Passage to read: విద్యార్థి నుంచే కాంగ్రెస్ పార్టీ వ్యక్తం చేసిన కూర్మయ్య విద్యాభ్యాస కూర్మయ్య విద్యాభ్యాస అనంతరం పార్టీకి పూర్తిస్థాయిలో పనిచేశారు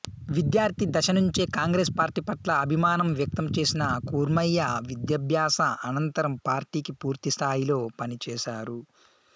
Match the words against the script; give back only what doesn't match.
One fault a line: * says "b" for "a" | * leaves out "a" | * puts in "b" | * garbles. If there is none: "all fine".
* puts in "దశ"
* puts in "పట్ల అభిమానం"
* leaves out "కూర్మయ్య విద్యాభ్యాస"